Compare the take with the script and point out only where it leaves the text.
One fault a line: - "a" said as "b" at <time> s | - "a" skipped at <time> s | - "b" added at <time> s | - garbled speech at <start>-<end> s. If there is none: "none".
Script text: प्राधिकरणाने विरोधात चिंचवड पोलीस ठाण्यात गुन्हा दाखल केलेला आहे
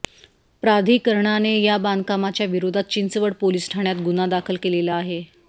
- "या बांधकामाच्या" added at 1.6 s